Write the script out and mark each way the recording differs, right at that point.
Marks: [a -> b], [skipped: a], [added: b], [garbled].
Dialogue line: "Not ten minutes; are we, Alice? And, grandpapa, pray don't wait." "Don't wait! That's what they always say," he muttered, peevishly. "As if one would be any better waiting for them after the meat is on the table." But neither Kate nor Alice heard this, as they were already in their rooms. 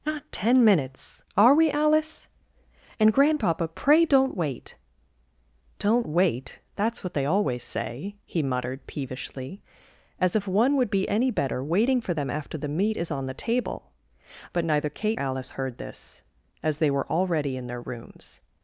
"Not ten minutes; are we, Alice? And, grandpapa, pray don't wait." "Don't wait! That's what they always say," he muttered, peevishly. "As if one would be any better waiting for them after the meat is on the table." But neither Kate [skipped: nor] Alice heard this, as they were already in their rooms.